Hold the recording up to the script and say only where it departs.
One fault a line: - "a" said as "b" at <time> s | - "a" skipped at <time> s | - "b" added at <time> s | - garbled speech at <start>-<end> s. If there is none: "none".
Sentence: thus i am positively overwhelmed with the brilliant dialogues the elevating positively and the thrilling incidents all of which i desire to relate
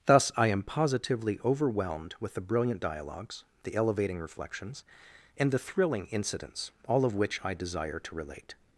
- "positively" said as "reflections" at 4.2 s